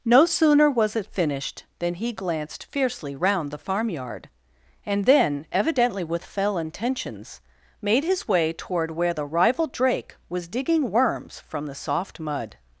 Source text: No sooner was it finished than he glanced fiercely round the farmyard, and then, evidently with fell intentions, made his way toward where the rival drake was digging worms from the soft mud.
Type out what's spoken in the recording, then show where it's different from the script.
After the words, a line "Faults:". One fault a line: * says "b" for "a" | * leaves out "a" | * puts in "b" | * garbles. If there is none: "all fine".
No sooner was it finished than he glanced fiercely round the farmyard, and then, evidently with fell intentions, made his way toward where the rival drake was digging worms from the soft mud.
Faults:
all fine